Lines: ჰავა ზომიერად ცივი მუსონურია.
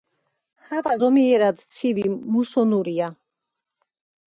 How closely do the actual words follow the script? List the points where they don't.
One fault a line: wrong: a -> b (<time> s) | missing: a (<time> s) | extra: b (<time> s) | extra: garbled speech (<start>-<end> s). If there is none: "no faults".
no faults